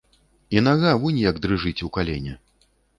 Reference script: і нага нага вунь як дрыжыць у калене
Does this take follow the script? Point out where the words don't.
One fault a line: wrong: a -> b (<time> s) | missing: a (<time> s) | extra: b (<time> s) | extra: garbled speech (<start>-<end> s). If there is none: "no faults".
missing: нага (0.9 s)